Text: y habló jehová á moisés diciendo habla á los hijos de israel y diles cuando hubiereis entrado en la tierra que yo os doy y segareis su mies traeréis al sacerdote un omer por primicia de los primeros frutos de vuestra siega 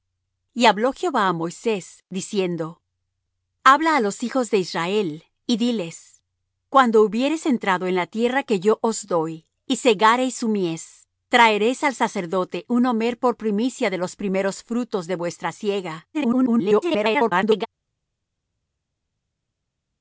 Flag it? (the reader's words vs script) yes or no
yes